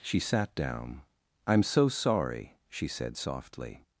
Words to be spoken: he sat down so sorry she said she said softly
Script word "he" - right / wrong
wrong